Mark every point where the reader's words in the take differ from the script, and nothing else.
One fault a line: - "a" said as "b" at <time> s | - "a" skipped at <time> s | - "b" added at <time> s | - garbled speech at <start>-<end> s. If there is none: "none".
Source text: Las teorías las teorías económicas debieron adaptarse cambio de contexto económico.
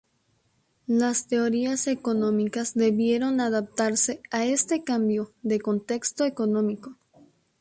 - "las teorías" skipped at 1.9 s
- "a este" added at 4.3 s